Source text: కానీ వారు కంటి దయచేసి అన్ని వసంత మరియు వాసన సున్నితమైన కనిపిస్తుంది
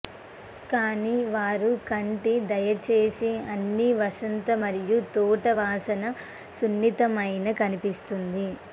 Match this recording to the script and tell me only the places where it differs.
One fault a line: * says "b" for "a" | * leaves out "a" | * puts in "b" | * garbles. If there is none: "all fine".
* puts in "తోట"